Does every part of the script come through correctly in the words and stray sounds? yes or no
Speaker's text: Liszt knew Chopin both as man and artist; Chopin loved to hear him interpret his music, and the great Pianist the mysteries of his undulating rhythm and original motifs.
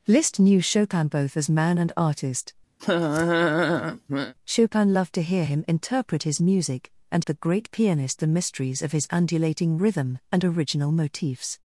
no